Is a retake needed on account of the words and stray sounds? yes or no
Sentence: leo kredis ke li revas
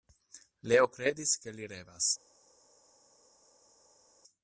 no